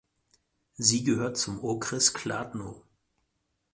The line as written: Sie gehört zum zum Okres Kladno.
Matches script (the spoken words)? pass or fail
fail